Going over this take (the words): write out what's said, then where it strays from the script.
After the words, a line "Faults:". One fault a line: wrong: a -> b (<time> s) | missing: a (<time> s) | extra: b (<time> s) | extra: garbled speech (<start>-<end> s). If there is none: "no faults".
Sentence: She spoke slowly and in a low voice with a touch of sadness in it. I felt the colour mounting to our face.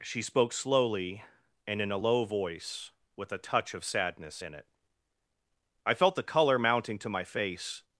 She spoke slowly and in a low voice with a touch of sadness in it. I felt the colour mounting to my face.
Faults:
wrong: our -> my (7.1 s)